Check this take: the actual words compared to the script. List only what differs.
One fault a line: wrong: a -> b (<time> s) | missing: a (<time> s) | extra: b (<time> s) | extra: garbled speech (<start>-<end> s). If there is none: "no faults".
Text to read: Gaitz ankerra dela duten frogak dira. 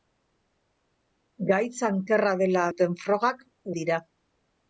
no faults